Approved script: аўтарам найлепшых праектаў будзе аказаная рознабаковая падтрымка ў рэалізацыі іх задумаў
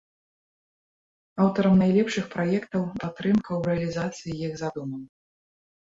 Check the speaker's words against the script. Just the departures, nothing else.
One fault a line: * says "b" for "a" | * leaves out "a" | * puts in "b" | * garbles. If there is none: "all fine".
* leaves out "будзе аказаная рознабаковая"